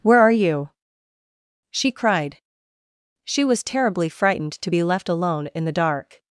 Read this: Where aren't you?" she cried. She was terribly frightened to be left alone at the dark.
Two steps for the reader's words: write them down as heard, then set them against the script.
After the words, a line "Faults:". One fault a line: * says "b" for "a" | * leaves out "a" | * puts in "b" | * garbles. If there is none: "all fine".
Where are you?" she cried. She was terribly frightened to be left alone in the dark.
Faults:
* says "are" for "aren't"
* says "in" for "at"